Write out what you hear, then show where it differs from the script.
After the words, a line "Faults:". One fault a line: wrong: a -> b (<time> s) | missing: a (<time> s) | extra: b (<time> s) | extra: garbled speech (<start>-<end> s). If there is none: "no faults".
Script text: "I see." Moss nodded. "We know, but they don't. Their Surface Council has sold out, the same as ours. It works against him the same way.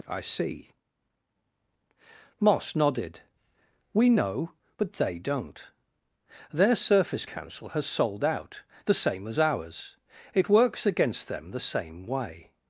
"I see." Moss nodded. "We know, but they don't. Their Surface Council has sold out, the same as ours. It works against them the same way.
Faults:
wrong: him -> them (11.3 s)